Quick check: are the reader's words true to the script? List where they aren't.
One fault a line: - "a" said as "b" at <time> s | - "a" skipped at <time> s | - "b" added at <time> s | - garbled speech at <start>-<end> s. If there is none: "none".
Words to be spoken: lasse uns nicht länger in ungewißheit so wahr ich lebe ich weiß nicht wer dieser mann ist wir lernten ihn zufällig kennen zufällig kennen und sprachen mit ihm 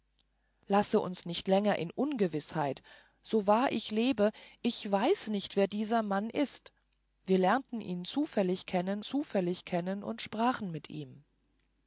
none